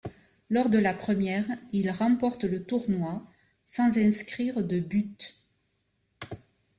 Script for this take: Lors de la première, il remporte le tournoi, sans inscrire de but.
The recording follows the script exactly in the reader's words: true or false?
true